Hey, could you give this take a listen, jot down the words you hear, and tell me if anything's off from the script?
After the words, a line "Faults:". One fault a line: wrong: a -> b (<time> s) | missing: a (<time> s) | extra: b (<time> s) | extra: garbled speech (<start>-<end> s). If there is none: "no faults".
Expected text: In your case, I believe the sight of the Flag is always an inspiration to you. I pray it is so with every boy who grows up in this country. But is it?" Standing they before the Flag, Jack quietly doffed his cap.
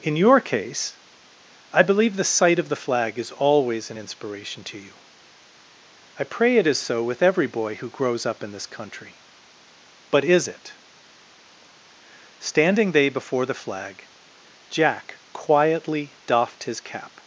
In your case, I believe the sight of the Flag is always an inspiration to you. I pray it is so with every boy who grows up in this country. But is it?" Standing they before the Flag, Jack quietly doffed his cap.
Faults:
no faults